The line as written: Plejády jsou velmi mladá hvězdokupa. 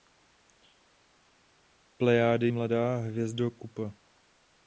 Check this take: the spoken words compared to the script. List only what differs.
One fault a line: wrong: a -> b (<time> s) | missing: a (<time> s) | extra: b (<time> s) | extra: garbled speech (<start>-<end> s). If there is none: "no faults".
missing: jsou velmi (2.5 s)